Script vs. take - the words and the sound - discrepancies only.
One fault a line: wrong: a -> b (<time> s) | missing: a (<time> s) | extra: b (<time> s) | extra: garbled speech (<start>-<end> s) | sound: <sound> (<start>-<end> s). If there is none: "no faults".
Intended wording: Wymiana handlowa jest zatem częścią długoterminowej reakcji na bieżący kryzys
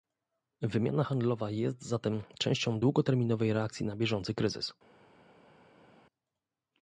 no faults